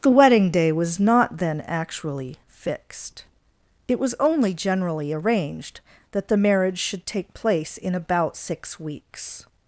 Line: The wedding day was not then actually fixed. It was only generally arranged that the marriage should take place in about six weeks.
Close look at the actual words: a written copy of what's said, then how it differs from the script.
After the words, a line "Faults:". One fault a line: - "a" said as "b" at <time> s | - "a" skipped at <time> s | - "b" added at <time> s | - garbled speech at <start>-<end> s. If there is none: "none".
The wedding day was not then actually fixed. It was only generally arranged that the marriage should take place in about six weeks.
Faults:
none